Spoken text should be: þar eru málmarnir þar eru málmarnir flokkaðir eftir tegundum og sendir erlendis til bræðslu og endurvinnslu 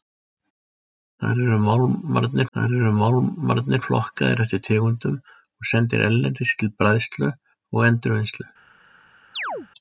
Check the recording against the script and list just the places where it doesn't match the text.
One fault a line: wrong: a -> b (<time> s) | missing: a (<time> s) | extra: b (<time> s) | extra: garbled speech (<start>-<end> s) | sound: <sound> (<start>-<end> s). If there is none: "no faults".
sound: chirp (9.3-9.7 s)